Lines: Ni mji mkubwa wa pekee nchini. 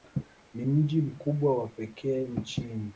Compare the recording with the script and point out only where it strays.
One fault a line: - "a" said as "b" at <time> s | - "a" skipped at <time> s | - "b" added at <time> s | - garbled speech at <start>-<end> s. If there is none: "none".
none